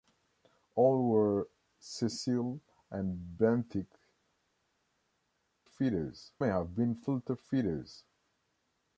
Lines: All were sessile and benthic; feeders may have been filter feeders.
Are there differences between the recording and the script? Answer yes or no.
no